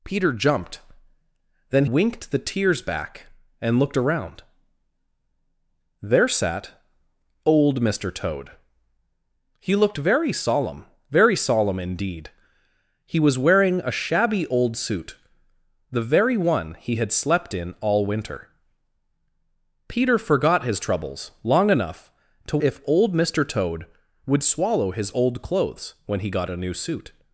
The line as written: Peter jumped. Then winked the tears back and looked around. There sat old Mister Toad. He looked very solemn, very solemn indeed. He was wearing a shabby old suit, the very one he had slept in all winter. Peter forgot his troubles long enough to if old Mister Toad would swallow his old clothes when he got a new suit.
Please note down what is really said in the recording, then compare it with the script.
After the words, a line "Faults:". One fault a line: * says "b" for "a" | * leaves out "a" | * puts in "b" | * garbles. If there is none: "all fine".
Peter jumped. Then winked the tears back and looked around. There sat old Mister Toad. He looked very solemn, very solemn indeed. He was wearing a shabby old suit, the very one he had slept in all winter. Peter forgot his troubles long enough to if old Mister Toad would swallow his old clothes when he got a new suit.
Faults:
all fine